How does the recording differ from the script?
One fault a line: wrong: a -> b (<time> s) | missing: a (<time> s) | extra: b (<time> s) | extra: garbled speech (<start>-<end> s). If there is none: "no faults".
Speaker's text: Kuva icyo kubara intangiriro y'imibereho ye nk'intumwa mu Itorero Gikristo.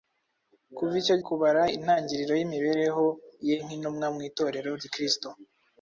no faults